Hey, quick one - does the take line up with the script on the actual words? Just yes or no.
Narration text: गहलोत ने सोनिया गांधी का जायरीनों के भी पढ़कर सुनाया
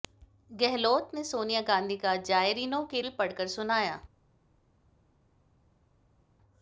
yes